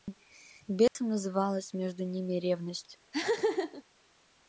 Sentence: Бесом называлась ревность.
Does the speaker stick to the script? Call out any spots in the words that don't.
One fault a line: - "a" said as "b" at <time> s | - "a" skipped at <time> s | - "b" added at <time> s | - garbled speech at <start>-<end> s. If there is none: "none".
- "между ними" added at 1.7 s